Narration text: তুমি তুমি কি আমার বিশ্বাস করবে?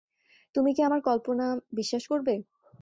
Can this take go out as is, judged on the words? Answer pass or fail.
fail